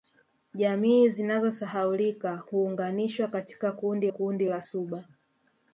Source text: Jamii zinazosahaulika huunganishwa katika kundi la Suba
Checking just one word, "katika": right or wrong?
right